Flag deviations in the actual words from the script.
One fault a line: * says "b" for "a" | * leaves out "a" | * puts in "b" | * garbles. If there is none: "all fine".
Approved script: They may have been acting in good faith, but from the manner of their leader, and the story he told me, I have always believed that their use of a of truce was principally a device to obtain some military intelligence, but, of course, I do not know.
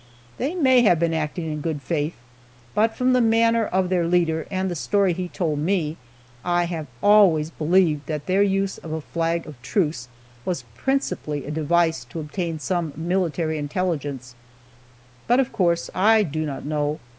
* puts in "flag"